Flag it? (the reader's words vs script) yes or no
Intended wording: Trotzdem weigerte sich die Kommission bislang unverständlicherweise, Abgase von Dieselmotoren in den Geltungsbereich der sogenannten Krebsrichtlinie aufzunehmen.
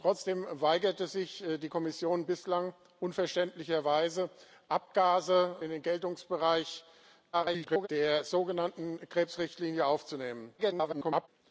yes